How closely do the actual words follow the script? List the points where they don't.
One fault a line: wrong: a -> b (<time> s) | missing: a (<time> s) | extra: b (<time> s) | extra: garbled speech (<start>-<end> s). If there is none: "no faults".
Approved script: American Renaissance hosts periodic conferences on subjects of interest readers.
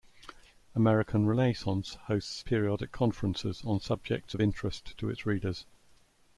extra: to its (5.0 s)